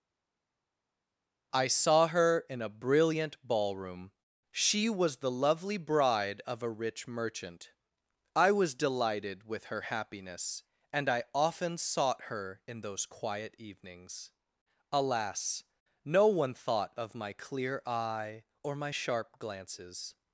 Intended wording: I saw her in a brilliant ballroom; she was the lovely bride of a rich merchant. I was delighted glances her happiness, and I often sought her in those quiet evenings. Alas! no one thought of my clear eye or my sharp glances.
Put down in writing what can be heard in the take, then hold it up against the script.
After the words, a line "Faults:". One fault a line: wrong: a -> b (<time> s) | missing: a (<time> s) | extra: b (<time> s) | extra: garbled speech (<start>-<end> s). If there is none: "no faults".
I saw her in a brilliant ballroom; she was the lovely bride of a rich merchant. I was delighted with her happiness, and I often sought her in those quiet evenings. Alas! no one thought of my clear eye or my sharp glances.
Faults:
wrong: glances -> with (9.4 s)